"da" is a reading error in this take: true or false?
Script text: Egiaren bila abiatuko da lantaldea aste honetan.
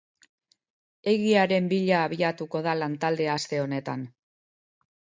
false